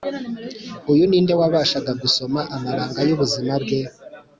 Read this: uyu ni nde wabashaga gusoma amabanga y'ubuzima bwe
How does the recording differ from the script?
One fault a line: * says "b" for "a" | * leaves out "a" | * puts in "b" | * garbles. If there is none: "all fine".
all fine